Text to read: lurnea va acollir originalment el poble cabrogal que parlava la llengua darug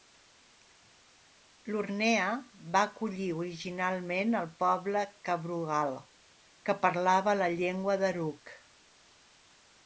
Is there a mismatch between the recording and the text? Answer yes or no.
no